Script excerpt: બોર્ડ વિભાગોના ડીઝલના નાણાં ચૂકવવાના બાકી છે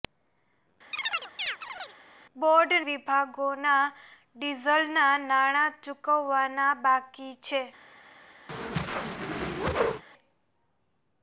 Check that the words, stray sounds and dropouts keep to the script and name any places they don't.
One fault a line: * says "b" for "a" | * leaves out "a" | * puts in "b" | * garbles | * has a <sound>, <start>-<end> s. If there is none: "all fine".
* has a chirp, 0.9-2.0 s
* has a whoosh, 8.5-10.0 s